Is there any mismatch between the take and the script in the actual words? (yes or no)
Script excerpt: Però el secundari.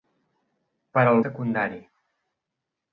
no